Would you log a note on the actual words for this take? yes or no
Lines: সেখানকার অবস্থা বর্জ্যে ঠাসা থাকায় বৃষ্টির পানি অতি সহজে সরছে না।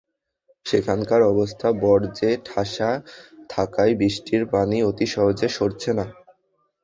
no